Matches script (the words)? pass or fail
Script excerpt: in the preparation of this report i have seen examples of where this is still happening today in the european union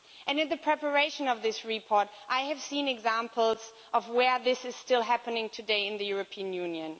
pass